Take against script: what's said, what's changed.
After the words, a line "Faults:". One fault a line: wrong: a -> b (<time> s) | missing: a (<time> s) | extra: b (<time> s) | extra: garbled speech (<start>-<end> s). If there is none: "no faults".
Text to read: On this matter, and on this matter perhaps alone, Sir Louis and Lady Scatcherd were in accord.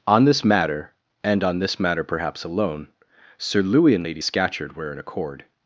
On this matter, and on this matter perhaps alone, Sir Louis and Lady Scatcherd were in accord.
Faults:
no faults